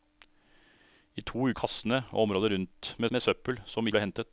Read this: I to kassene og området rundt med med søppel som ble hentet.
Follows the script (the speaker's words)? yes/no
yes